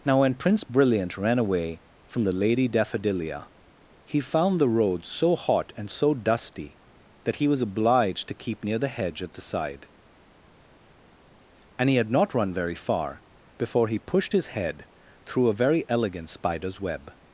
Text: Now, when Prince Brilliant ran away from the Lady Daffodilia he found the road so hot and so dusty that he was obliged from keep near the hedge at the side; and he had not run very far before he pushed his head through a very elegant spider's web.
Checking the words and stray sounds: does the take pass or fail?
fail